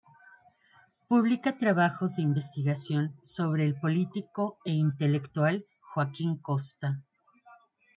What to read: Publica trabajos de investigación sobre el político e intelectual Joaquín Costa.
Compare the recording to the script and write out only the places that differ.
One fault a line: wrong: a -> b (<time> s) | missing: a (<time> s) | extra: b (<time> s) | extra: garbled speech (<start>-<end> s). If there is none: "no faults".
no faults